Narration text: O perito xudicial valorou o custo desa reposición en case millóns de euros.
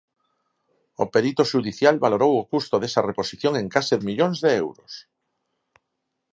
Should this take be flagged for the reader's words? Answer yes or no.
no